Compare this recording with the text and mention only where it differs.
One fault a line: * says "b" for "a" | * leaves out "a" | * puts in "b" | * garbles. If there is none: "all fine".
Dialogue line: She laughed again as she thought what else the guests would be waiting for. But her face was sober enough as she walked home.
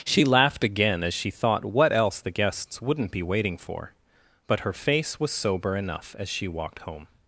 * says "wouldn't" for "would"